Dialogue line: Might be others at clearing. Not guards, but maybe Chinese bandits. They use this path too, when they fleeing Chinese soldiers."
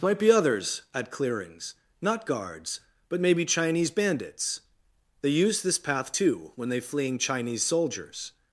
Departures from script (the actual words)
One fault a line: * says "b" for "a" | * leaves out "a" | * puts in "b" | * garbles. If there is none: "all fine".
* says "clearings" for "clearing"